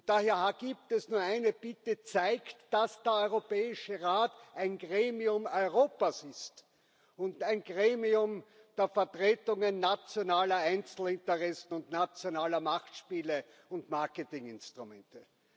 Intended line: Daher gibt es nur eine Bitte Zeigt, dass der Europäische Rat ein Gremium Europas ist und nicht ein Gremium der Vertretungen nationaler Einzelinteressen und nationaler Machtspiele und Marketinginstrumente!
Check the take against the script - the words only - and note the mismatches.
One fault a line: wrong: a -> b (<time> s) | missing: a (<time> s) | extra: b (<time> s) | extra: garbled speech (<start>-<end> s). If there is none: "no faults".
missing: nicht (7.4 s)